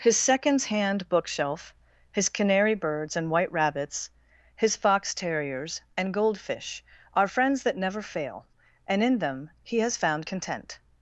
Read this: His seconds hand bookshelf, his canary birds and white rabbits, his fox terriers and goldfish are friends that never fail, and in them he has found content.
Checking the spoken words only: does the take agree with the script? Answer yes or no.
yes